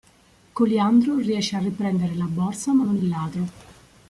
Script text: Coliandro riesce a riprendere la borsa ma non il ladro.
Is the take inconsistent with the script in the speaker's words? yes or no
no